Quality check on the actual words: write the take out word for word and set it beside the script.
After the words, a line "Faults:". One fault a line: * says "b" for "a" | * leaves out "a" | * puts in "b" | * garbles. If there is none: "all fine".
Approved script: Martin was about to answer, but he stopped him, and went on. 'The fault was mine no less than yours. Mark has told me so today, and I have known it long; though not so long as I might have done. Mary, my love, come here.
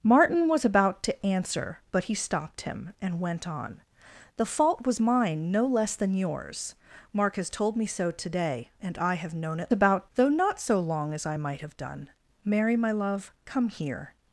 Martin was about to answer, but he stopped him, and went on. 'The fault was mine no less than yours. Mark has told me so today, and I have known it about; though not so long as I might have done. Mary, my love, come here.
Faults:
* says "about" for "long"